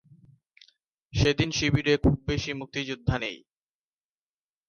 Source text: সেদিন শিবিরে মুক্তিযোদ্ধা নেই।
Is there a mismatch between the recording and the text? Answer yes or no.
yes